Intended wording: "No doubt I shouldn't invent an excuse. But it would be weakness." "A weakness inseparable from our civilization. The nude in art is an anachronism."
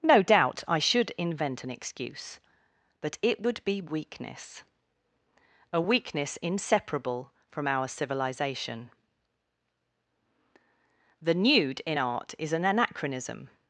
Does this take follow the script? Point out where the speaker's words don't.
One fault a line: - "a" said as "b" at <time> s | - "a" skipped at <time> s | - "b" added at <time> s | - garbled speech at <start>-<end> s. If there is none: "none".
- "shouldn't" said as "should" at 0.8 s